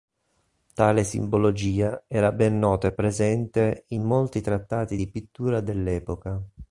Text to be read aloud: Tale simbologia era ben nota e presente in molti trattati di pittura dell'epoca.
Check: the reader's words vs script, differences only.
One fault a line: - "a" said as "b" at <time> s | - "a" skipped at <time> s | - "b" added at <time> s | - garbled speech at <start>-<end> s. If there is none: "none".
none